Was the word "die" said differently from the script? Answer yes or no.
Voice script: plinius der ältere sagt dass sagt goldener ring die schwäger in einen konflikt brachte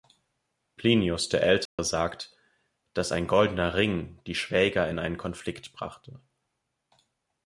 no